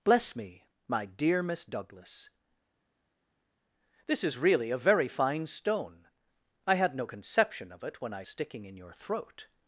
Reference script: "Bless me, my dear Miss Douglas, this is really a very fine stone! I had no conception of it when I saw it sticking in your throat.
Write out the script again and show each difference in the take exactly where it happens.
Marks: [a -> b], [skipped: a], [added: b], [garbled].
"Bless me, my dear Miss Douglas, this is really a very fine stone! I had no conception of it when I [skipped: saw it] sticking in your throat.